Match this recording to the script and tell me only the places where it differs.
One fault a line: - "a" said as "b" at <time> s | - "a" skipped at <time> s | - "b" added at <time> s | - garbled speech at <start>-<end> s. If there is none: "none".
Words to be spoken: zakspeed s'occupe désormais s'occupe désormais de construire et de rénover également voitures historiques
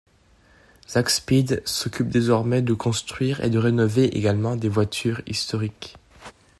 - "s'occupe désormais" skipped at 2.6 s
- "des" added at 4.5 s